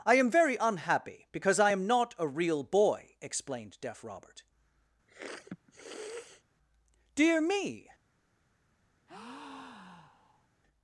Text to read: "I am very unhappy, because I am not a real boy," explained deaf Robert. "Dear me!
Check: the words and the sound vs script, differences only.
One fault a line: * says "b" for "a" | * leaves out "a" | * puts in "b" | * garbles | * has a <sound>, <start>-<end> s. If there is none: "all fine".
* has a sniff, 5.1-6.4 s
* has a breath, 9.1-10.5 s